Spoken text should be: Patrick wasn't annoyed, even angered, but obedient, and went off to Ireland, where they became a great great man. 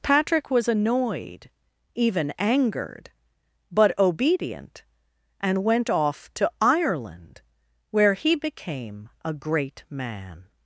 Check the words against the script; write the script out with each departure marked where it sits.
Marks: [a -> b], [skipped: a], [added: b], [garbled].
Patrick [wasn't -> was] annoyed, even angered, but obedient, and went off to Ireland, where [they -> he] became a great [skipped: great] man.